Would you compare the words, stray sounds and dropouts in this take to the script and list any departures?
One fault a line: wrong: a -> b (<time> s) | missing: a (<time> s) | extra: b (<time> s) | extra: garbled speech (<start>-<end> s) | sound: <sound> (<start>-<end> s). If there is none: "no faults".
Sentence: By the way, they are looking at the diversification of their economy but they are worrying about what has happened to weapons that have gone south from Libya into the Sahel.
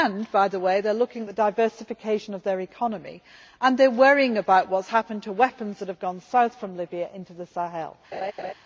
wrong: but -> and (3.6 s)
sound: laugh (8.1-8.5 s)